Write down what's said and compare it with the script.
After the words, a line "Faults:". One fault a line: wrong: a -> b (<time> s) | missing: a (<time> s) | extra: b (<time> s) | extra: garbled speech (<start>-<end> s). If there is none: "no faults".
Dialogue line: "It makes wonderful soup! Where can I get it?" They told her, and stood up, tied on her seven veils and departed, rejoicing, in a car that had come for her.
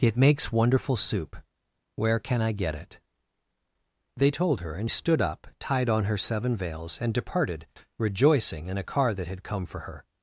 "It makes wonderful soup! Where can I get it?" They told her, and stood up, tied on her seven veils and departed, rejoicing, in a car that had come for her.
Faults:
no faults